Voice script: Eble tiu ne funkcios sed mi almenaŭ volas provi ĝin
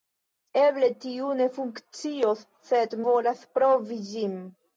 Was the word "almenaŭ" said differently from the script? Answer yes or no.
yes